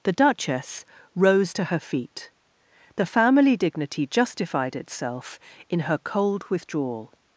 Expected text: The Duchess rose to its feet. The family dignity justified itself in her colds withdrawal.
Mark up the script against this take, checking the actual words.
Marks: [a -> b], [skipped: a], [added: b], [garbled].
The Duchess rose to [its -> her] feet. The family dignity justified itself in her [colds -> cold] withdrawal.